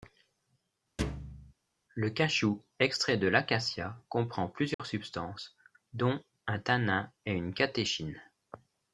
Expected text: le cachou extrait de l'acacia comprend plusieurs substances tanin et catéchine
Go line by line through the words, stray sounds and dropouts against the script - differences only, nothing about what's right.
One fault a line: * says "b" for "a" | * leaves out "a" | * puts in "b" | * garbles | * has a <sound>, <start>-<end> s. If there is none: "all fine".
* has a thud, 1.0-1.5 s
* has a dropout, 4.7-4.8 s
* puts in "dont un"
* puts in "une"